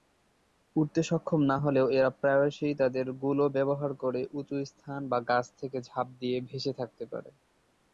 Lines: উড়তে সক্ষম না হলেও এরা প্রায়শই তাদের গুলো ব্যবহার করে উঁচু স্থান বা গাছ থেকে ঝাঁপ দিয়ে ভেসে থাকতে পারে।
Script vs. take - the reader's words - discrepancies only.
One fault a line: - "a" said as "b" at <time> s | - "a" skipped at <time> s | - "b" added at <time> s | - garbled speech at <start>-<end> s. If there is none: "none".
none